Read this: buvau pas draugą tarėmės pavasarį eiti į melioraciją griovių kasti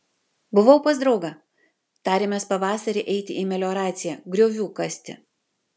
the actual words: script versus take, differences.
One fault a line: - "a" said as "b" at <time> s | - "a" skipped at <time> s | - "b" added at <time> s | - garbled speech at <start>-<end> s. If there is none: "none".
none